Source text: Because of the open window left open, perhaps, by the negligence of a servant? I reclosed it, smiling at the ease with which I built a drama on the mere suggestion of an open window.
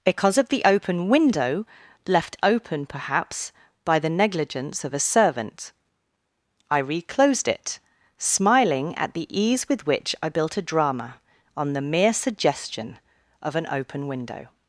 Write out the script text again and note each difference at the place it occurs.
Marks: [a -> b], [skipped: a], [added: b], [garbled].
Because of the open window left open, perhaps, by the negligence of a servant? I reclosed it, smiling at the ease with which I built a drama on the mere suggestion of an open window.